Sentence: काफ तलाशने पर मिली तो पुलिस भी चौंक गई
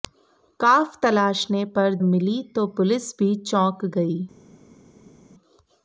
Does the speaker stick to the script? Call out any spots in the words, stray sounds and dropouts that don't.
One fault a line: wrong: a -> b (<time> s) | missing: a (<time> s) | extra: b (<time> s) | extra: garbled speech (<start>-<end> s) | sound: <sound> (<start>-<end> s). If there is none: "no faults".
no faults